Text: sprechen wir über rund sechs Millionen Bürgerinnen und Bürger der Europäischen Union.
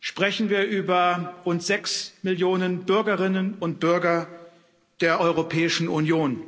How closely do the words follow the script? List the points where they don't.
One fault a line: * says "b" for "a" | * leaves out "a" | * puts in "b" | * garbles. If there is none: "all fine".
all fine